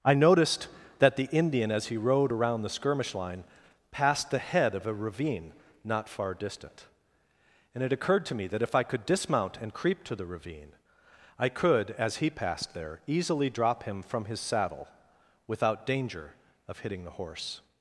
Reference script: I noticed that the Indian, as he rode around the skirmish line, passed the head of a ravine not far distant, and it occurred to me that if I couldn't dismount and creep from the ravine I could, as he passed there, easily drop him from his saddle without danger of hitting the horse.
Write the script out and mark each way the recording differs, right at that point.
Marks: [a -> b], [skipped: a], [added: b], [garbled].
I noticed that the Indian, as he rode around the skirmish line, passed the head of a ravine not far distant, and it occurred to me that if I [couldn't -> could] dismount and creep [from -> to] the ravine I could, as he passed there, easily drop him from his saddle without danger of hitting the horse.